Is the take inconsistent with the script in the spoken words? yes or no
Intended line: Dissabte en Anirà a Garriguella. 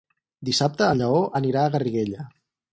yes